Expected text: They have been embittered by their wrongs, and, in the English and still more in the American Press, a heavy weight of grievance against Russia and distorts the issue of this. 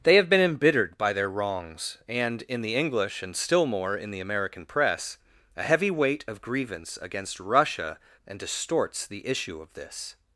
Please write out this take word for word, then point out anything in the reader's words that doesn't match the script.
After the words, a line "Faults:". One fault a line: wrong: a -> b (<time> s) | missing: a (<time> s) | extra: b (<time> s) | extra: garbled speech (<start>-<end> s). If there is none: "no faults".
They have been embittered by their wrongs, and, in the English and still more in the American Press, a heavy weight of grievance against Russia and distorts the issue of this.
Faults:
no faults